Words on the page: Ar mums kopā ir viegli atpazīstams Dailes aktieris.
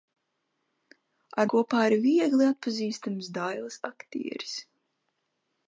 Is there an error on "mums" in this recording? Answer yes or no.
yes